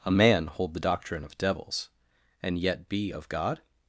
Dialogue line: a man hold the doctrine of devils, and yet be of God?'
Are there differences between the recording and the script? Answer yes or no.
no